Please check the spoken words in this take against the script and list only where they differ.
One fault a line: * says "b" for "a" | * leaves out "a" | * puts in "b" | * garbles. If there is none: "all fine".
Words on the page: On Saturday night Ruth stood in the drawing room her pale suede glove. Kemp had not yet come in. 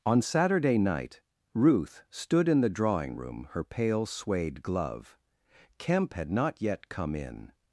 all fine